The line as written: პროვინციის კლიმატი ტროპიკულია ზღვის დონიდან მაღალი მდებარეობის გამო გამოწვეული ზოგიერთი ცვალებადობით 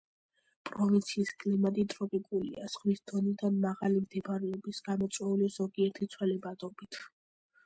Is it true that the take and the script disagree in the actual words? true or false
true